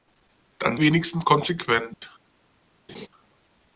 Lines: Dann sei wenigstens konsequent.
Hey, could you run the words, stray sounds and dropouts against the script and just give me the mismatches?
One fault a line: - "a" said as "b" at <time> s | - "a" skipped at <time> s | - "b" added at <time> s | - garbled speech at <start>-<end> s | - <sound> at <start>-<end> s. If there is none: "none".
- "sei" skipped at 0.8 s
- dropout at 1.9-2.0 s
- laugh at 2.9-3.1 s